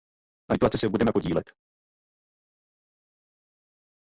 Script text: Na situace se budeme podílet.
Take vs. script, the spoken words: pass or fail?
pass